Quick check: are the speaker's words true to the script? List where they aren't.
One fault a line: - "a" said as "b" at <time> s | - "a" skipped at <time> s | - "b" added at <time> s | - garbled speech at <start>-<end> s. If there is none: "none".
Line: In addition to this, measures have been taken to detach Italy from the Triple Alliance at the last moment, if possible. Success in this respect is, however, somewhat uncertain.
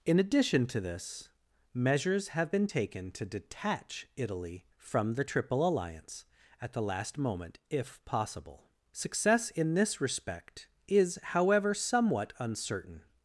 none